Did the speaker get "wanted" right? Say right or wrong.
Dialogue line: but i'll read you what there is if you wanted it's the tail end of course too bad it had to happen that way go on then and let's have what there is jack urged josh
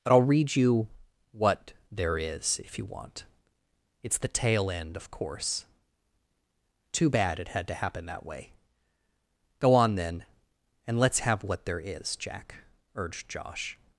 wrong